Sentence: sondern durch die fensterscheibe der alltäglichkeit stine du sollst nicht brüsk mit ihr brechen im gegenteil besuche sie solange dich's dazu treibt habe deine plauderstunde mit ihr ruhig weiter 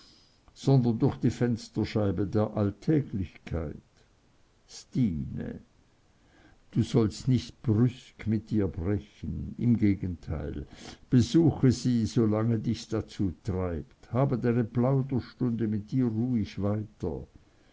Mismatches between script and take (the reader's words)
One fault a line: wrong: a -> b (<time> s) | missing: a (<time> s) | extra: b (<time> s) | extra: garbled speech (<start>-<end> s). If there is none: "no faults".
no faults